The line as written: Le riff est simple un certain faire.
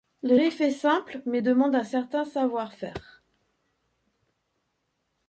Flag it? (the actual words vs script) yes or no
yes